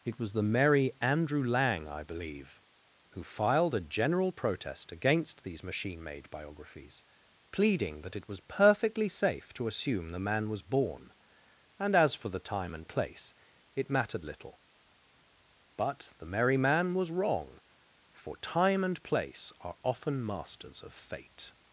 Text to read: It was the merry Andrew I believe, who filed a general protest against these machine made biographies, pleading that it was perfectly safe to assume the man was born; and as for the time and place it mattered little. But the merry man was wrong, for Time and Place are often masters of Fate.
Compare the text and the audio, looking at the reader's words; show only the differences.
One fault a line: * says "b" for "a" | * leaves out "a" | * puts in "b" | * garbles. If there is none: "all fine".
* puts in "Lang"